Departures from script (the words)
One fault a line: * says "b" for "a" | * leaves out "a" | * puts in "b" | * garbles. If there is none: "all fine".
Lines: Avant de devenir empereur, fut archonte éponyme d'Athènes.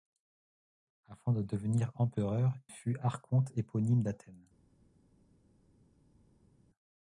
all fine